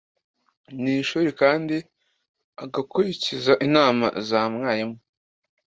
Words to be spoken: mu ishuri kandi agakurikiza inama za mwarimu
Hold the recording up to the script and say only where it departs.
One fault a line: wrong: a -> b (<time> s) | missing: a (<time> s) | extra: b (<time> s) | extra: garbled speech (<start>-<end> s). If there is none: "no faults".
no faults